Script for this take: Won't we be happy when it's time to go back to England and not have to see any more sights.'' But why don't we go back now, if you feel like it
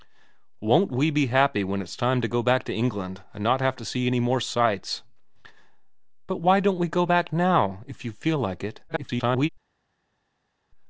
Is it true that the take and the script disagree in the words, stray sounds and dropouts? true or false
true